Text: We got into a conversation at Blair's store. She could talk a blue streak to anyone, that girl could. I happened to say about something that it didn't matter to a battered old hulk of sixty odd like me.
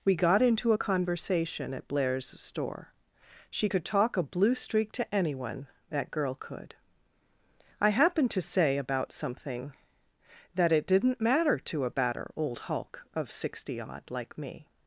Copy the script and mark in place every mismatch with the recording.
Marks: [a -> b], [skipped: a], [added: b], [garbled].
We got into a conversation at Blair's store. She could talk a blue streak to anyone, that girl could. I happened to say about something that it didn't matter to a [battered -> batter] old hulk of sixty odd like me.